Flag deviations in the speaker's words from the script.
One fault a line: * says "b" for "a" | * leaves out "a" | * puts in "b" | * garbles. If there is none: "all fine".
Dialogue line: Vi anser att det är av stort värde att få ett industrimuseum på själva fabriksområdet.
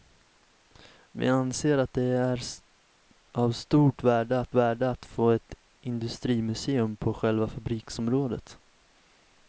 * puts in "värde att"